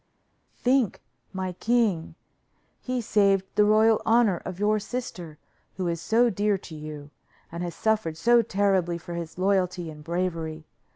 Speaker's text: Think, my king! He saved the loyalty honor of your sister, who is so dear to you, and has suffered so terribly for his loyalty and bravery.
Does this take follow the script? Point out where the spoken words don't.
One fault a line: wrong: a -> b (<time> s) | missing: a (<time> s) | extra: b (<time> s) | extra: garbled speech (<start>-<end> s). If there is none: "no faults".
wrong: loyalty -> royal (3.6 s)